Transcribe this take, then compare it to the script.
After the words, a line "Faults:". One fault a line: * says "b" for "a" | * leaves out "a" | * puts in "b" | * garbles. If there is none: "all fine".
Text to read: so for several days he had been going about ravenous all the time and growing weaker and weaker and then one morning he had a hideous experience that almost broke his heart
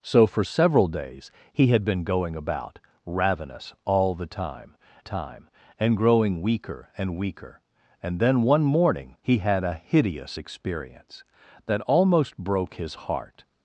so for several days he had been going about ravenous all the time time and growing weaker and weaker and then one morning he had a hideous experience that almost broke his heart
Faults:
* puts in "time"